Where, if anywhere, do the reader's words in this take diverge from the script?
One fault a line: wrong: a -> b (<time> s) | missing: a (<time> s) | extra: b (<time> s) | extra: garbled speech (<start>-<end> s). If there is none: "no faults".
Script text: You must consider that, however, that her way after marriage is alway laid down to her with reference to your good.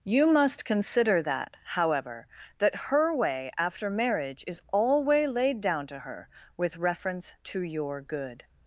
no faults